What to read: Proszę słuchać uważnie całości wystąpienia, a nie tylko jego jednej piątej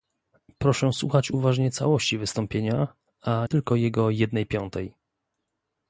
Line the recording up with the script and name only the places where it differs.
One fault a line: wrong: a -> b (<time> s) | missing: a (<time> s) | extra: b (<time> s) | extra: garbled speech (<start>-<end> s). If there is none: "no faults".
missing: nie (3.5 s)